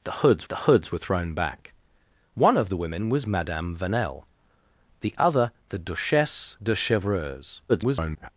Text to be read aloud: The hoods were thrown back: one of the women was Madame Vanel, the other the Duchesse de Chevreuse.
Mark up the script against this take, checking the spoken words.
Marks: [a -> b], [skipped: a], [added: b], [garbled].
The hoods [added: the hoods] were thrown back: one of the women was Madame Vanel, the other the Duchesse de Chevreuse. [garbled]